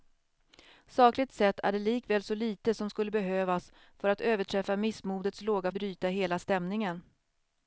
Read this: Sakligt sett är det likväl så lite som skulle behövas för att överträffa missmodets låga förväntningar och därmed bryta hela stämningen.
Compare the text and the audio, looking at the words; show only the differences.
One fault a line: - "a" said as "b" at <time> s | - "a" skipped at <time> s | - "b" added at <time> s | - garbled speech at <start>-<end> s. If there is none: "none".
- "förväntningar och därmed" skipped at 5.7 s